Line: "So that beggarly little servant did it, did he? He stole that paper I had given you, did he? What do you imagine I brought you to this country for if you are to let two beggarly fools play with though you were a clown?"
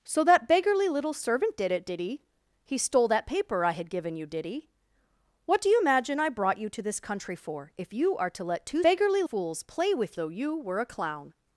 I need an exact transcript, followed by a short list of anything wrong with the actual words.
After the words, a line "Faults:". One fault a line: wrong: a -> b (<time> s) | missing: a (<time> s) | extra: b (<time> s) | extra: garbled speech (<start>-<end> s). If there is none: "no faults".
"So that beggarly little servant did it, did he? He stole that paper I had given you, did he? What do you imagine I brought you to this country for if you are to let two beggarly fools play with though you were a clown?"
Faults:
no faults